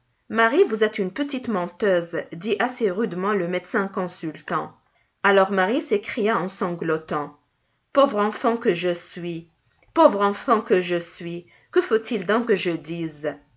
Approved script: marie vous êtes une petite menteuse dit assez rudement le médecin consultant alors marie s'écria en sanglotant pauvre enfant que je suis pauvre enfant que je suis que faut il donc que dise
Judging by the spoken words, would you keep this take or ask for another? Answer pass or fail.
fail